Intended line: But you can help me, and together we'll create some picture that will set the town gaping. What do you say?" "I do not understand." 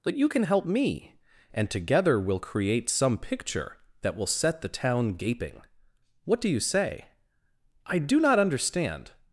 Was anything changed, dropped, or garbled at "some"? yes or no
no